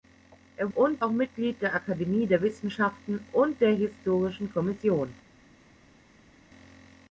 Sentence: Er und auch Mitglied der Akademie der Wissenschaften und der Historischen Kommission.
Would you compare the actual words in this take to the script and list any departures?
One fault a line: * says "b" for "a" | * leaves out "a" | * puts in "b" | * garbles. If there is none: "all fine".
all fine